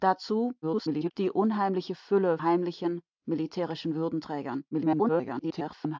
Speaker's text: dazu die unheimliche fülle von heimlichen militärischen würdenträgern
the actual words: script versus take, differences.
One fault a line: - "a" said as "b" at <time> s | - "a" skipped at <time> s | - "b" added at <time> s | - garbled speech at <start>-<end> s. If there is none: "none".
- garbled speech at 0.6-1.1 s
- "von" skipped at 2.4 s
- garbled speech at 4.7-6.0 s